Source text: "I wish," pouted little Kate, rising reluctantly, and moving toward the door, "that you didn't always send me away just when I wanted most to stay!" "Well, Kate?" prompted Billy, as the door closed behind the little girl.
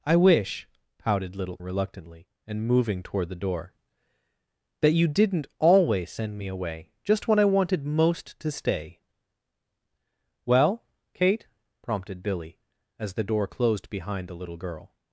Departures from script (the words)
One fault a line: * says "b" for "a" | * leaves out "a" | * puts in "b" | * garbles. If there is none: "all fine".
* leaves out "Kate rising"